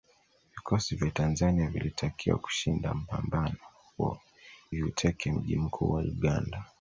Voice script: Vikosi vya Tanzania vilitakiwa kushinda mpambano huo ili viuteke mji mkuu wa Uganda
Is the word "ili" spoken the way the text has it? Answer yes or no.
no